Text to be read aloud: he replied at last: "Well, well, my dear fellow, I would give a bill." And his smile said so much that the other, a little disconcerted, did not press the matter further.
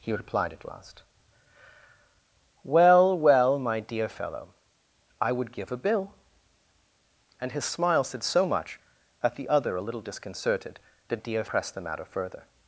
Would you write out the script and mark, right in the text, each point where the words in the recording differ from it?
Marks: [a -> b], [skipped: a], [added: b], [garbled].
he replied at last: "Well, well, my dear fellow, I would give a bill." And his smile said so much that the other, a little disconcerted, did [not -> dear] press the matter further.